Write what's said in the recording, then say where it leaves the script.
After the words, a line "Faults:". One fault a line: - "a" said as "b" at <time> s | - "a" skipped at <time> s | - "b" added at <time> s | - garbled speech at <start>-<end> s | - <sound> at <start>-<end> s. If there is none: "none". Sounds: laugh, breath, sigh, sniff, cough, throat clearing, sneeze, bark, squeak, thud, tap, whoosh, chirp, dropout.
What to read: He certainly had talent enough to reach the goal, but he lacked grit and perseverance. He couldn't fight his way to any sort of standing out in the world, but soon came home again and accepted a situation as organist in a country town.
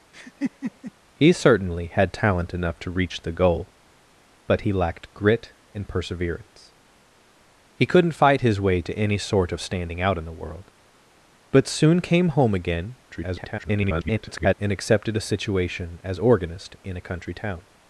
He certainly had talent enough to reach the goal, but he lacked grit and perseverance. He couldn't fight his way to any sort of standing out in the world, but soon came home again [garbled] and accepted a situation as organist in a country town.
Faults:
- laugh at 0.1-0.9 s
- garbled speech at 13.1-14.5 s